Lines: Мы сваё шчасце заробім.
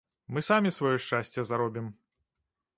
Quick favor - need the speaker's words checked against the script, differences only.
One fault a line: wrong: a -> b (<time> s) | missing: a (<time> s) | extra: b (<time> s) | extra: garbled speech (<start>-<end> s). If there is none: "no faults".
extra: самі (0.5 s)